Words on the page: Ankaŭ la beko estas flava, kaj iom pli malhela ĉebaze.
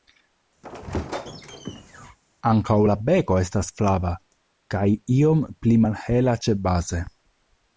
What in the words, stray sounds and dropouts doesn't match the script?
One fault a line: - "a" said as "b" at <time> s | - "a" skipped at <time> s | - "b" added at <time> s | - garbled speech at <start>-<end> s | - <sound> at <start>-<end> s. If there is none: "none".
- squeak at 0.6-2.2 s